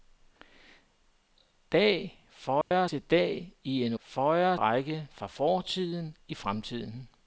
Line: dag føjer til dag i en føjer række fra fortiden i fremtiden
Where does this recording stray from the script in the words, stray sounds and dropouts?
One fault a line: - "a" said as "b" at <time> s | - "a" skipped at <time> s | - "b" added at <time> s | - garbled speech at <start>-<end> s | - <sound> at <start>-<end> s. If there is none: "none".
- dropout at 2.6-2.7 s